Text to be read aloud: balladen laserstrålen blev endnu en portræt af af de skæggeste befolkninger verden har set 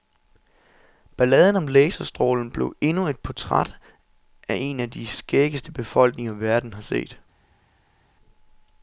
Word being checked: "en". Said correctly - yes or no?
no